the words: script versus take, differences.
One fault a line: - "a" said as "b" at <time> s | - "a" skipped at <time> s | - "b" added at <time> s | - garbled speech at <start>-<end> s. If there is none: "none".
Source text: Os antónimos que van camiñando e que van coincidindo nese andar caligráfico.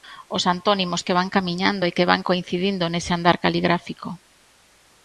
none